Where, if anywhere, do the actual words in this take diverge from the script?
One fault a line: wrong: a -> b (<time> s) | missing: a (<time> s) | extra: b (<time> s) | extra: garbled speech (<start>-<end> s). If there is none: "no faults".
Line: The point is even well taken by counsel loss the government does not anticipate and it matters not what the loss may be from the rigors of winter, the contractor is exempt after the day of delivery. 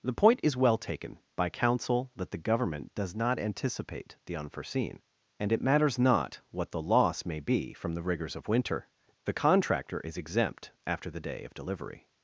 missing: even (0.6 s)
wrong: loss -> that (2.1 s)
extra: the unforeseen (4.2 s)